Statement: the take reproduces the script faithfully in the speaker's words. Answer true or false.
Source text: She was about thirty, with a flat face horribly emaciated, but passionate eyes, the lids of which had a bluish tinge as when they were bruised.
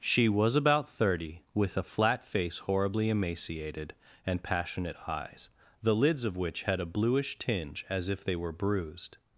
false